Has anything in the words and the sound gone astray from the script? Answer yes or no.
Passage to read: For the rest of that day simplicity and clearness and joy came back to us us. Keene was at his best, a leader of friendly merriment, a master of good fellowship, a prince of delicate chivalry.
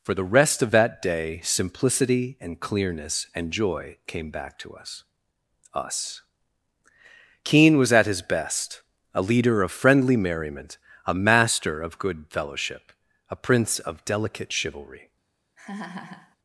yes